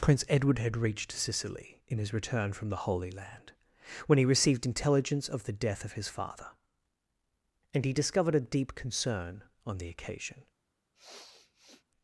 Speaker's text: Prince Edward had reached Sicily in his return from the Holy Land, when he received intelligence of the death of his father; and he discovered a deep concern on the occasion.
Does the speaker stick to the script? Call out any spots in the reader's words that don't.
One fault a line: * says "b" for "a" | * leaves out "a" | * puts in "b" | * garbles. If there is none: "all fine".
all fine